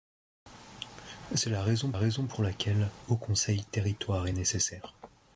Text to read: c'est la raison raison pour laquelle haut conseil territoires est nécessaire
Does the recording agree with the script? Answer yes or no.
yes